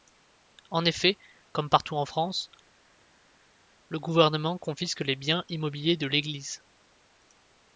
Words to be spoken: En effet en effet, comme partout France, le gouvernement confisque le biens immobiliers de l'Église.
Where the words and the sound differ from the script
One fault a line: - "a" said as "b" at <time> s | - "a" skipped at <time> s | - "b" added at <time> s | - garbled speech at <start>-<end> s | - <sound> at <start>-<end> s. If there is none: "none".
- "en effet" skipped at 1.2 s
- "en" added at 1.9 s
- "le" said as "les" at 5.0 s